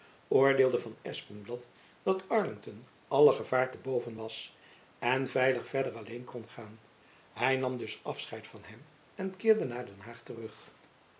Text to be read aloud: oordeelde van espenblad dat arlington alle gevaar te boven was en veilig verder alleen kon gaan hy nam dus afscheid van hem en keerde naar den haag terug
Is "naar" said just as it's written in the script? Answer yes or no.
yes